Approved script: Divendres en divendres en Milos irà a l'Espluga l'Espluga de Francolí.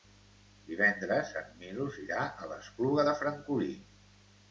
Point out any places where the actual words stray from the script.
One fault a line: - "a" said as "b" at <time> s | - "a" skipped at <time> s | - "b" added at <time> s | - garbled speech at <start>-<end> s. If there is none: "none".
- "divendres en" skipped at 1.5 s
- "l'Espluga" skipped at 3.0 s